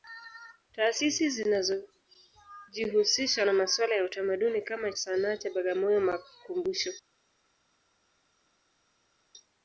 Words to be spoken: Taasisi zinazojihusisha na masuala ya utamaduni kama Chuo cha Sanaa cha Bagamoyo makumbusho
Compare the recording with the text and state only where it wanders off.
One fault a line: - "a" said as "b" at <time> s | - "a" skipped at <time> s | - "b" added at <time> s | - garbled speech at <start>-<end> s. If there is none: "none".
- "Chuo cha" skipped at 4.9 s